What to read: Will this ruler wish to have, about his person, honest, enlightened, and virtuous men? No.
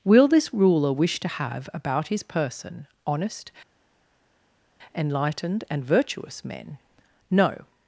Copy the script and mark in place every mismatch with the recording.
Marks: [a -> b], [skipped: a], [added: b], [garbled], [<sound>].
Will this ruler wish to have, about his person, honest, enlightened, and virtuous men? No.